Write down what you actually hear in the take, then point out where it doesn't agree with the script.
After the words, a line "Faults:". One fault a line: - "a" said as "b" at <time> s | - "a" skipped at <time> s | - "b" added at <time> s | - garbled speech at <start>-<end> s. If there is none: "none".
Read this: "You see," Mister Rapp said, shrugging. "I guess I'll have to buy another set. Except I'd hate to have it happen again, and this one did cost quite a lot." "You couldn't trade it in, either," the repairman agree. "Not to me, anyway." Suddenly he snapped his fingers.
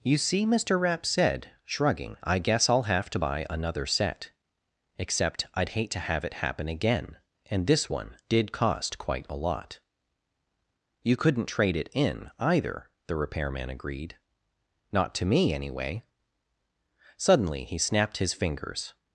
"You see," Mister Rapp said, shrugging. "I guess I'll have to buy another set. Except I'd hate to have it happen again, and this one did cost quite a lot." "You couldn't trade it in, either," the repairman agreed. "Not to me, anyway." Suddenly he snapped his fingers.
Faults:
- "agree" said as "agreed" at 13.7 s